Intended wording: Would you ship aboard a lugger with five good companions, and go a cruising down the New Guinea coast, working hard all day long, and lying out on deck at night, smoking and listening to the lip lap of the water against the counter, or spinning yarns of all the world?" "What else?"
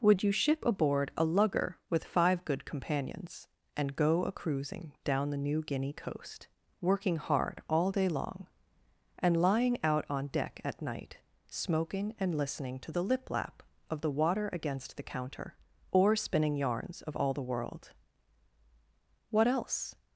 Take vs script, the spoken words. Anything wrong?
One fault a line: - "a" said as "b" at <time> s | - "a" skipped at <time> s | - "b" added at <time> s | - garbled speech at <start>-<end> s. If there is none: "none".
none